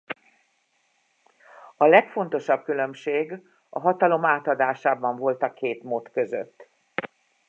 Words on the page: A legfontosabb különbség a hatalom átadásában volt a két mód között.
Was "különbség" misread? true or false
false